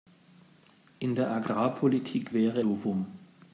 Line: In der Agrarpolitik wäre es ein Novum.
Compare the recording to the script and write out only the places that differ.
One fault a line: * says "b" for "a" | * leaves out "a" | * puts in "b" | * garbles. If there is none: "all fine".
* leaves out "es ein"